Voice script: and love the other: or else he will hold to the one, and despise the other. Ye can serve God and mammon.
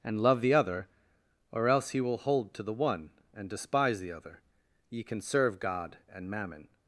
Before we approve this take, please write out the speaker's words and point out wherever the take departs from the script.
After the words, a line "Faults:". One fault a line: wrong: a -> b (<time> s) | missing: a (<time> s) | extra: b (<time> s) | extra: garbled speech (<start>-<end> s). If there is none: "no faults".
and love the other: or else he will hold to the one, and despise the other. Ye can serve God and mammon.
Faults:
no faults